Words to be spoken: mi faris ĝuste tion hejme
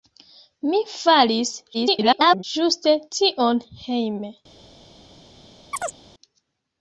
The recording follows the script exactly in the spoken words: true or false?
false